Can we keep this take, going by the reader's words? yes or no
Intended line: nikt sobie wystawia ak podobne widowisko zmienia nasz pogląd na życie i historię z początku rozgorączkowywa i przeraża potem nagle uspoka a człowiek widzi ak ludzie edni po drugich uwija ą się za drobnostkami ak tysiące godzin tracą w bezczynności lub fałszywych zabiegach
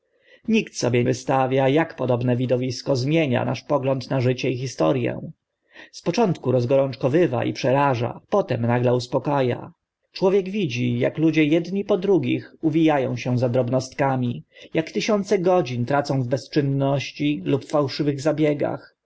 yes